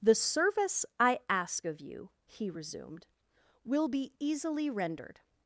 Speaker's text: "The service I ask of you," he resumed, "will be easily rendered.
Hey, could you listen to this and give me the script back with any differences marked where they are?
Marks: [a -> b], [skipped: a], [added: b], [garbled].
"The service I ask of you," he resumed, "will be easily rendered.